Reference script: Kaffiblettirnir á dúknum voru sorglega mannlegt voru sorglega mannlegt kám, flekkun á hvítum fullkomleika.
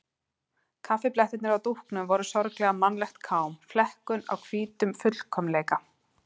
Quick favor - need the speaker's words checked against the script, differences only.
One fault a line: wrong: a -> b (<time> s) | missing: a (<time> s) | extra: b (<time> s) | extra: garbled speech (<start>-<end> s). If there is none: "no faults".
missing: voru sorglega mannlegt (3.2 s)